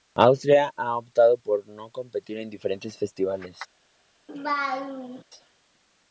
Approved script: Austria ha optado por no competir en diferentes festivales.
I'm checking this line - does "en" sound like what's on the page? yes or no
yes